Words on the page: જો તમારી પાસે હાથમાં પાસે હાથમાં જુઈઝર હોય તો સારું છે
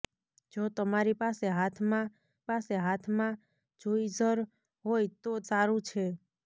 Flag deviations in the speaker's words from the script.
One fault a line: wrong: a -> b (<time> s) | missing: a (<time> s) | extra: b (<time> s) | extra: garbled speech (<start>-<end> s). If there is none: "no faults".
no faults